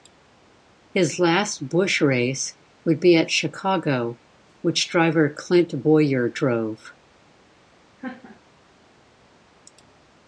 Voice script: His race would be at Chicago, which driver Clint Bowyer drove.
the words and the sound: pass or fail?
fail